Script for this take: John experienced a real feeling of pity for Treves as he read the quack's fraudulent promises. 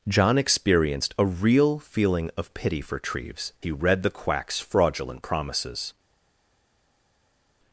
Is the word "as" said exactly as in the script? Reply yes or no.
no